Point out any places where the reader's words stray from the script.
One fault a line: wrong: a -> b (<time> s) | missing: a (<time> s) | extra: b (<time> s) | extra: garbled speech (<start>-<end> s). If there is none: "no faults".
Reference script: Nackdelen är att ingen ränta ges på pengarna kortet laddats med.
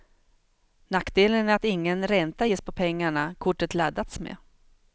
no faults